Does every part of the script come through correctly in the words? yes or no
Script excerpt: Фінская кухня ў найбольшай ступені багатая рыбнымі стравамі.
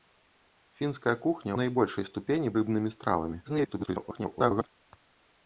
no